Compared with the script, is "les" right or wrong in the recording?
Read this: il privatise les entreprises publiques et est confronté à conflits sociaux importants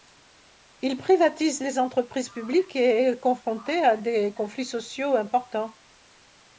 right